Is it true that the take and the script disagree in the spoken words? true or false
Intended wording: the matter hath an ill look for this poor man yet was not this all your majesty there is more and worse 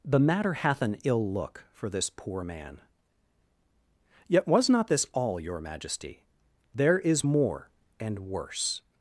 false